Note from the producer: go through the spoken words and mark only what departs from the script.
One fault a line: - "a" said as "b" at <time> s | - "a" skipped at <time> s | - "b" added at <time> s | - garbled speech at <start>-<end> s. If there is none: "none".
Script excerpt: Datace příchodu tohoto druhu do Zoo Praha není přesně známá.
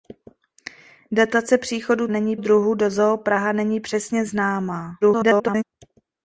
- "tohoto" said as "není" at 2.1 s
- garbled speech at 5.0-5.6 s